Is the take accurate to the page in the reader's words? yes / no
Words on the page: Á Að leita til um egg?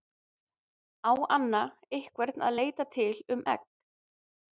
no